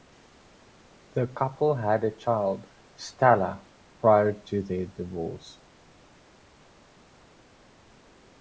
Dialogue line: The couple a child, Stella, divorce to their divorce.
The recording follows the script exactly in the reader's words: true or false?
false